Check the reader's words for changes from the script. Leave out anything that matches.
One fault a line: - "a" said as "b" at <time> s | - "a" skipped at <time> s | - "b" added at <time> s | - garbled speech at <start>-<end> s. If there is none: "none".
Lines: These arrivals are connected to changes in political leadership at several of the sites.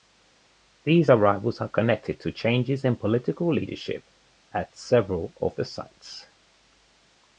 none